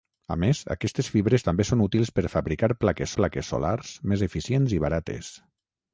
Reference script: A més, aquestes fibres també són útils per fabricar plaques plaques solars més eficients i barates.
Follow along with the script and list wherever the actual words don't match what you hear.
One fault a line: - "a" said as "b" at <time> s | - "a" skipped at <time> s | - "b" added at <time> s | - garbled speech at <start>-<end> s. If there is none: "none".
none